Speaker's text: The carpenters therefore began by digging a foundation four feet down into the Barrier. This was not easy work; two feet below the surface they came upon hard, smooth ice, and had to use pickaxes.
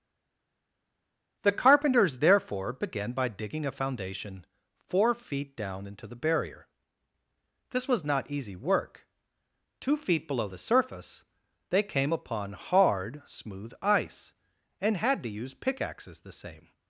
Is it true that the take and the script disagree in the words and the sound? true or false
true